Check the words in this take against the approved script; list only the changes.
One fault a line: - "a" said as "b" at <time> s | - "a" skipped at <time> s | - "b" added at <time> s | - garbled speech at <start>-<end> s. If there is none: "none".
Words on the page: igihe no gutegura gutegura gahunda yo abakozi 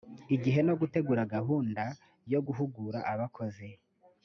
- "gutegura" skipped at 1.3 s
- "guhugura" added at 2.5 s